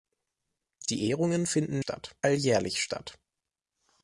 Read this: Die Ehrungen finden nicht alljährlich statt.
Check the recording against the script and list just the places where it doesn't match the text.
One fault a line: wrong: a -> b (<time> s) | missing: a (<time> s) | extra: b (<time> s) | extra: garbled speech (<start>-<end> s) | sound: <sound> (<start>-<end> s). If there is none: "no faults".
wrong: nicht -> statt (1.8 s)